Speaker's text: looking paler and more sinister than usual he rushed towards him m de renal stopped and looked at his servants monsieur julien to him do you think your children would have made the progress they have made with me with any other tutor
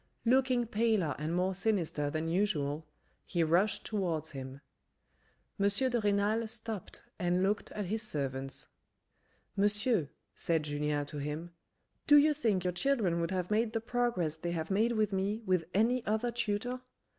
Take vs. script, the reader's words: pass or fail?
fail